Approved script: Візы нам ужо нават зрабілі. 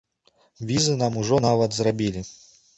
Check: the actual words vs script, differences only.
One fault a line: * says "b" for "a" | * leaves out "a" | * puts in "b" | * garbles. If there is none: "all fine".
all fine